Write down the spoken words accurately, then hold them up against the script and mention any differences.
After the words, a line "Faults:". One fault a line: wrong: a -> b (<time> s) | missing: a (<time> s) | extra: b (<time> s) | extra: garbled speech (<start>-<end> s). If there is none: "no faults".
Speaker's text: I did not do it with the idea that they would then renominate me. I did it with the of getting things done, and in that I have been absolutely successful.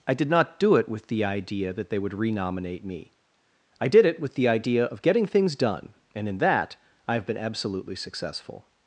I did not do it with the idea that they would renominate me. I did it with the idea of getting things done, and in that I have been absolutely successful.
Faults:
missing: then (2.1 s)
extra: idea (4.5 s)